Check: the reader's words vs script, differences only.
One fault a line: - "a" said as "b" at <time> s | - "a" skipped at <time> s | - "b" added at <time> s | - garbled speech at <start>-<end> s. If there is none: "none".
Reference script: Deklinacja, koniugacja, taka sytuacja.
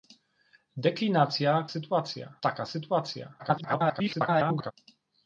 - "koniugacja" said as "sytuacja" at 1.7 s
- garbled speech at 3.4-4.7 s